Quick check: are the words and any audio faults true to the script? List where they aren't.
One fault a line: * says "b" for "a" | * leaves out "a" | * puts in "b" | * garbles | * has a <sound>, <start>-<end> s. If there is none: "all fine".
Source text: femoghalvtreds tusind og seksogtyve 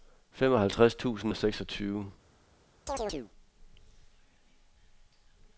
* has a chirp, 2.9-3.3 s